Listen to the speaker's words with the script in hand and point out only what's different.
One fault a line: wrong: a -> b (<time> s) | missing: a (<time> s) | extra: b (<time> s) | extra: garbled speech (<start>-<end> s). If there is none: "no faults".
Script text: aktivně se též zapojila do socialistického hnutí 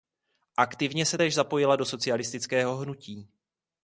no faults